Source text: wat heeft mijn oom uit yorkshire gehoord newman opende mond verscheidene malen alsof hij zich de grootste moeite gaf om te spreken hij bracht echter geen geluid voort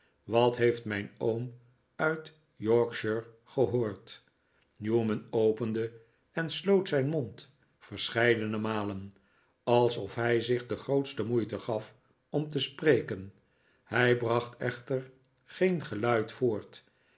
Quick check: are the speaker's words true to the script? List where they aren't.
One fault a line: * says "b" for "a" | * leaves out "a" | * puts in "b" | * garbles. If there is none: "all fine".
* puts in "en sloot zijn"